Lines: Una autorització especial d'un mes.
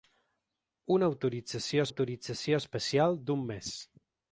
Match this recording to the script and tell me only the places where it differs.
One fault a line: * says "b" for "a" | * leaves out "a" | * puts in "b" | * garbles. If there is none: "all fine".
* puts in "autorització"